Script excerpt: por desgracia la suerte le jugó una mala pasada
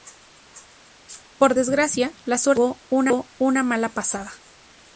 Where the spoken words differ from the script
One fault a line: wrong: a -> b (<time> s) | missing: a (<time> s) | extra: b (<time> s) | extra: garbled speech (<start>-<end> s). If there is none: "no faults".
no faults